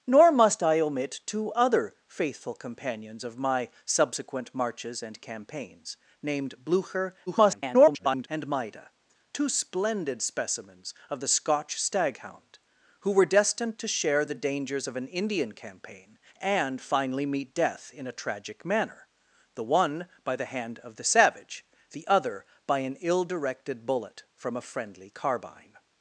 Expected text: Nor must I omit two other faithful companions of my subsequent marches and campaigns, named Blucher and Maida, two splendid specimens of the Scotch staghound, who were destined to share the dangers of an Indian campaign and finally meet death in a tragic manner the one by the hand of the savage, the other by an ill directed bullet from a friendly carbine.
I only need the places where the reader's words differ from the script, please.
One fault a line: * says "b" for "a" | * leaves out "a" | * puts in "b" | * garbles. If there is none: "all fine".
* garbles